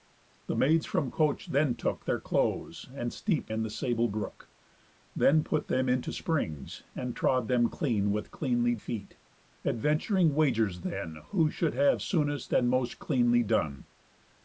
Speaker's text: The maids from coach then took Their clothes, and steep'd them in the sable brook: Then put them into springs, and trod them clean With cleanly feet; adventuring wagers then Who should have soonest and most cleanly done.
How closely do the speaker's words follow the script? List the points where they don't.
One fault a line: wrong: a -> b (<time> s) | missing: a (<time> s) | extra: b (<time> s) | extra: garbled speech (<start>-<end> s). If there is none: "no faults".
missing: them (3.5 s)